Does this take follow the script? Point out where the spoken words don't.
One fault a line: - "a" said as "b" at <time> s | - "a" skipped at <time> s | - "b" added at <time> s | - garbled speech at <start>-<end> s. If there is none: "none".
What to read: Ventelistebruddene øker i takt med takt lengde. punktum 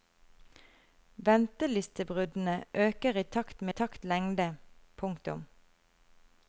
none